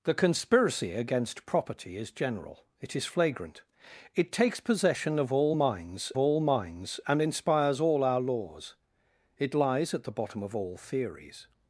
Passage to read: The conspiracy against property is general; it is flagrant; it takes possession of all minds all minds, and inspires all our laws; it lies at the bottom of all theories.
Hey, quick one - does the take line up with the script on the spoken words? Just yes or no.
yes